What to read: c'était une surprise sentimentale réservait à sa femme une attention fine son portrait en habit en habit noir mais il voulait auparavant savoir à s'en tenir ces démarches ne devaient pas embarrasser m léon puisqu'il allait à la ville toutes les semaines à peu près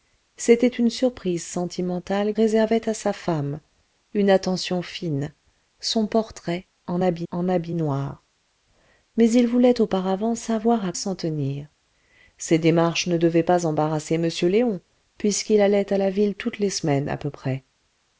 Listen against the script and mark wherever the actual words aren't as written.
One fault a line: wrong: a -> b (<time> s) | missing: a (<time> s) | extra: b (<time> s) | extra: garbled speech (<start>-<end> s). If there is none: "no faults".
no faults